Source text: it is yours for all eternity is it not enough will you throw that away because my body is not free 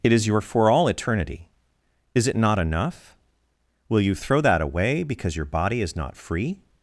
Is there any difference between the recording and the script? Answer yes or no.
yes